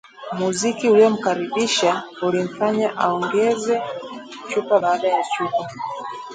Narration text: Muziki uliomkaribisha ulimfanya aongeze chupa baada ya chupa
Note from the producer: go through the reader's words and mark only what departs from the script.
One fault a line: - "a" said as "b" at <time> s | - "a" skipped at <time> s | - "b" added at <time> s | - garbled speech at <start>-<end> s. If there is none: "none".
none